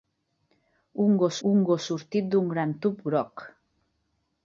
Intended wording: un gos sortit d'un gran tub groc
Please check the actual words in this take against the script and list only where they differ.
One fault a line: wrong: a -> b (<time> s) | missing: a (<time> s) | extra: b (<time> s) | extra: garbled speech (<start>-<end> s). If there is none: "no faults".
extra: un gos (1.5 s)